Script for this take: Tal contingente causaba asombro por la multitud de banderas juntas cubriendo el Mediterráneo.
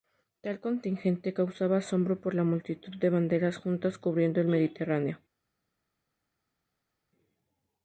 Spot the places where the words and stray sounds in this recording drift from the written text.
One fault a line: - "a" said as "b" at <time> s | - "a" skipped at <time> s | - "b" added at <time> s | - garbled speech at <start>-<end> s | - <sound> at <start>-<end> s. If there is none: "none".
none